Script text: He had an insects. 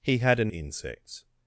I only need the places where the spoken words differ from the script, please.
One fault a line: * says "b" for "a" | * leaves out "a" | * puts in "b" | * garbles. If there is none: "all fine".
all fine